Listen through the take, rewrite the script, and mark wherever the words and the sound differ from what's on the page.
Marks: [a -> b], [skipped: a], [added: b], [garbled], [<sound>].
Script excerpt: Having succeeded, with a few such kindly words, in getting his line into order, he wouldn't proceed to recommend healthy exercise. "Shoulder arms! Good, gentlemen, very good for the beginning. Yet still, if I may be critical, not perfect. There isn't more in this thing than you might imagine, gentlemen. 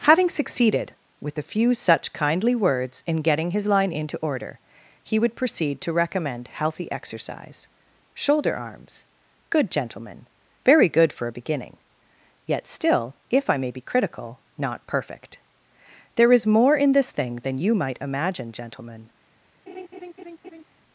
Having succeeded, with a few such kindly words, in getting his line into order, he [wouldn't -> would] proceed to recommend healthy exercise. "Shoulder arms! Good, gentlemen, very good for [the -> a] beginning. Yet still, if I may be critical, not perfect. There [isn't -> is] more in this thing than you might imagine, gentlemen. [laugh]